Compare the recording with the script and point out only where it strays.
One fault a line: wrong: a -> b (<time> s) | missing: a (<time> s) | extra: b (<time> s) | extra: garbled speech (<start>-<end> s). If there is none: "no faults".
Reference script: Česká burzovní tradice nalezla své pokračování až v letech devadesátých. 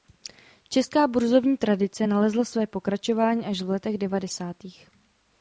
no faults